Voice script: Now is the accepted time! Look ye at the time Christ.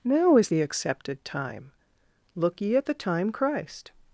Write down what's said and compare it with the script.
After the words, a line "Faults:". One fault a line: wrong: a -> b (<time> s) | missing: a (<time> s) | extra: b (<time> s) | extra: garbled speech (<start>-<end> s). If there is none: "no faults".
Now is the accepted time! Look ye at the time Christ.
Faults:
no faults